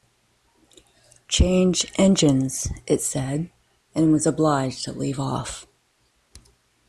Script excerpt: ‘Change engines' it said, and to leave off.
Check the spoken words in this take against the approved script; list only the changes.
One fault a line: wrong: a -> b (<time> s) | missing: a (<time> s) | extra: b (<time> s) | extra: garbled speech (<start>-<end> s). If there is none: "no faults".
extra: was obliged (4.1 s)